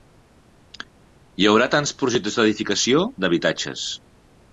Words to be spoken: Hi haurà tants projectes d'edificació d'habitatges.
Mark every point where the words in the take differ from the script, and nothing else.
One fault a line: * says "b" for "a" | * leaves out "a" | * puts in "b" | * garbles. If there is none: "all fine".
all fine